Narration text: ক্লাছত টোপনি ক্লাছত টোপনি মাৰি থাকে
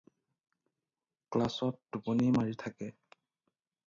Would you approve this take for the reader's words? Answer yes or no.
no